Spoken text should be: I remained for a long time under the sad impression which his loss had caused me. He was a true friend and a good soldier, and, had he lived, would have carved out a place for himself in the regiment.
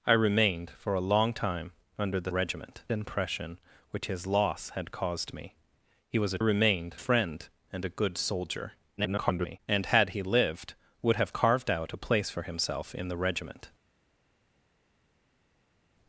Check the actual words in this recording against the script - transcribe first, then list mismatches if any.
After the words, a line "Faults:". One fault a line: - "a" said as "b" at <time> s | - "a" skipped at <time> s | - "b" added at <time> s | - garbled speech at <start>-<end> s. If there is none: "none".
I remained for a long time under the regiment impression which his loss had caused me. He was a remained friend and a good soldier, [garbled] and, had he lived, would have carved out a place for himself in the regiment.
Faults:
- "sad" said as "regiment" at 2.3 s
- "true" said as "remained" at 6.4 s
- garbled speech at 9.0-9.6 s